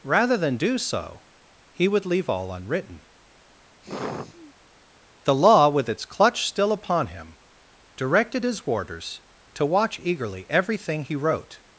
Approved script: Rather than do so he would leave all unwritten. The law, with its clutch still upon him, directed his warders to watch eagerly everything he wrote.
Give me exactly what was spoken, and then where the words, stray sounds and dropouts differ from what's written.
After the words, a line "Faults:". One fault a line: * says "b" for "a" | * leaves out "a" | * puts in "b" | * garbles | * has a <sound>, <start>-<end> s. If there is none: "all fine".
Rather than do so he would leave all unwritten. The law, with its clutch still upon him, directed his warders to watch eagerly everything he wrote.
Faults:
* has a sigh, 3.8-4.5 s